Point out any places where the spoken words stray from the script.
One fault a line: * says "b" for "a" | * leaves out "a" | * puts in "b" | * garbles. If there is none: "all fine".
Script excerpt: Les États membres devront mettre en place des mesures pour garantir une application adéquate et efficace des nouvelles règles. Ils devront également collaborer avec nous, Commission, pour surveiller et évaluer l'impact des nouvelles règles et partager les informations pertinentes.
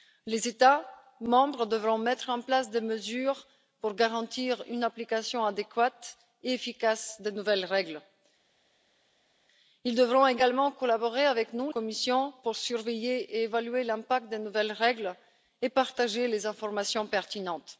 all fine